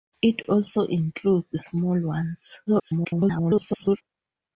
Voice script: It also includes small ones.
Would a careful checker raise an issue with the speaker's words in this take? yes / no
yes